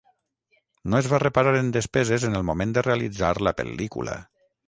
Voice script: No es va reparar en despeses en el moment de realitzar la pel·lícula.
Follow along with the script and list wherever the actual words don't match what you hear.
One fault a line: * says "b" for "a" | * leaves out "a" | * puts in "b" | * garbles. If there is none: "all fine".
all fine